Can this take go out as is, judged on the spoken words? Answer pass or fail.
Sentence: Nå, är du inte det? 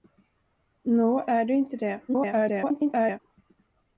fail